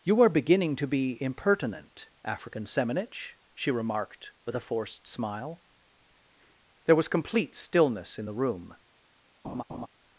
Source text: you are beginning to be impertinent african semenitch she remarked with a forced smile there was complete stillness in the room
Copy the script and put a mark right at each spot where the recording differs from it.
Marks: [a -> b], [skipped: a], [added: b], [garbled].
you are beginning to be impertinent african semenitch she remarked with a forced smile there was complete stillness in the room